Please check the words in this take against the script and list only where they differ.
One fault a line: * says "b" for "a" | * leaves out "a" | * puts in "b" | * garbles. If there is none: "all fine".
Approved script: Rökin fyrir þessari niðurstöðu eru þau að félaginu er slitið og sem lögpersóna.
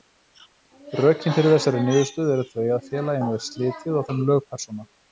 all fine